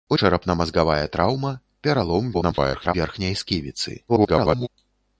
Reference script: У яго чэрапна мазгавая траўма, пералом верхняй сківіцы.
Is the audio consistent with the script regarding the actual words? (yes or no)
no